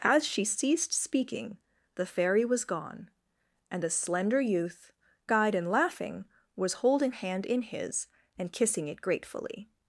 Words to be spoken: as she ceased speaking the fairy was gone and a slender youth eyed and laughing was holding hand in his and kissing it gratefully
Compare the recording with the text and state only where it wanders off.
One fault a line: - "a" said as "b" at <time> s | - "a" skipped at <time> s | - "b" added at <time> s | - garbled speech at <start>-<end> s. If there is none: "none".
none